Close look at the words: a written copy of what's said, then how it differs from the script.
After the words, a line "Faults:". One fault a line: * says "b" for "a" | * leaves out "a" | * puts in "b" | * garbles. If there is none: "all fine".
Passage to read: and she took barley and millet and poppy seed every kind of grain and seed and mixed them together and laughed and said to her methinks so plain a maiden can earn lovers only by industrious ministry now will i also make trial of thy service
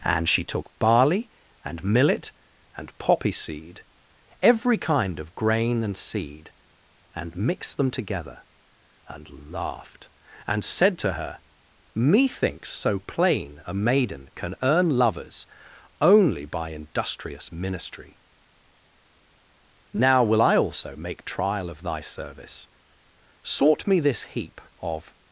and she took barley and millet and poppy seed every kind of grain and seed and mixed them together and laughed and said to her methinks so plain a maiden can earn lovers only by industrious ministry now will i also make trial of thy service sort me this heap of
Faults:
* puts in "sort me this heap of"